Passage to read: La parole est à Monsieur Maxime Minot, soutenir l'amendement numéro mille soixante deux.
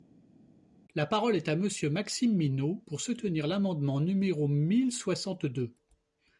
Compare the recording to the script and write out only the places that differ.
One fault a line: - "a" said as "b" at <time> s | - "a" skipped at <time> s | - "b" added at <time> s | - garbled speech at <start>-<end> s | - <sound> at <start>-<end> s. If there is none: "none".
- "pour" added at 2.9 s